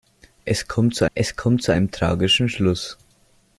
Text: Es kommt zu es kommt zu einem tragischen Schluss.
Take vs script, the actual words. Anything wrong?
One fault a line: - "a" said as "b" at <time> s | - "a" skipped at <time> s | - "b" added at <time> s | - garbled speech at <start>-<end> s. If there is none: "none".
none